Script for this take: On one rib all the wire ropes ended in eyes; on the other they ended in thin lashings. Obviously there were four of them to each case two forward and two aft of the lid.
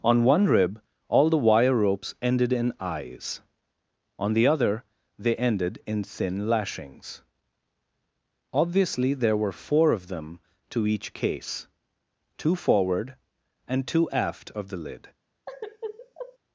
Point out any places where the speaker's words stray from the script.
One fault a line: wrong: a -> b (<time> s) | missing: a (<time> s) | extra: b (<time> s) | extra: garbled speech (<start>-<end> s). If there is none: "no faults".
no faults